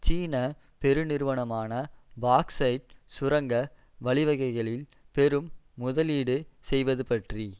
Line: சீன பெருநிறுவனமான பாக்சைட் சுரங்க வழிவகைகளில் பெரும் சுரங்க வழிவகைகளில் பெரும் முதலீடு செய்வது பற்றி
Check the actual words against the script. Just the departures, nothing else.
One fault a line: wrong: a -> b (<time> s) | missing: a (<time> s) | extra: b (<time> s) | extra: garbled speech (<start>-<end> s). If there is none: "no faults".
missing: சுரங்க வழிவகைகளில் பெரும் (5.5 s)